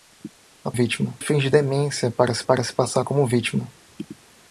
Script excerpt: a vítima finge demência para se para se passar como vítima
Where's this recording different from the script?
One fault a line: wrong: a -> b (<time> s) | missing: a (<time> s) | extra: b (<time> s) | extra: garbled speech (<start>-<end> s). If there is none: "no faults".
no faults